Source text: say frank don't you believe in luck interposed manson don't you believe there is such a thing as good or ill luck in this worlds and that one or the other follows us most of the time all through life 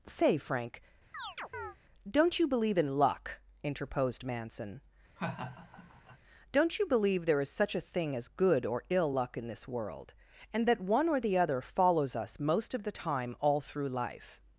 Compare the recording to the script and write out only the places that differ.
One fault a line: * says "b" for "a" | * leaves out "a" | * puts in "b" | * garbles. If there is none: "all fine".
* says "world" for "worlds"